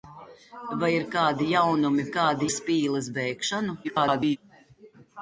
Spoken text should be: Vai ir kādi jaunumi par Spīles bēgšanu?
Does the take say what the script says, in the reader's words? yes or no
no